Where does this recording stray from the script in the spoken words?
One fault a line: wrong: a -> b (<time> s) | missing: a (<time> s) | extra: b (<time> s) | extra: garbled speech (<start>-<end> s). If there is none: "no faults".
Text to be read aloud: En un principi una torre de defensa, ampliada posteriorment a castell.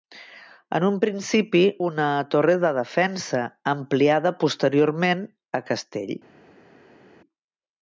no faults